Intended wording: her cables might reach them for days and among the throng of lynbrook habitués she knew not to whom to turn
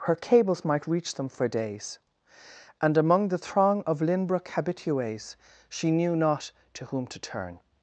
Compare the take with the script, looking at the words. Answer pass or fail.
pass